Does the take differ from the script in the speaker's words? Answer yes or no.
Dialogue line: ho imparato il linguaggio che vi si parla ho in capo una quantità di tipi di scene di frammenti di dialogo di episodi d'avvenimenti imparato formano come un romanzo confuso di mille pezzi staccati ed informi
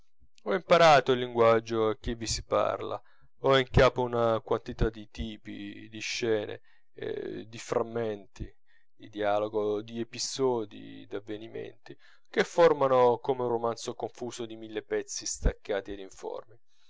yes